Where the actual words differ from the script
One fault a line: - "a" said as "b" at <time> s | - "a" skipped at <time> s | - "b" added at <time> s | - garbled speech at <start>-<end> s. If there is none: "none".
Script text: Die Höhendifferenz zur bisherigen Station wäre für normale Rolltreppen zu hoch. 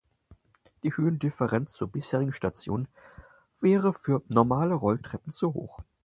none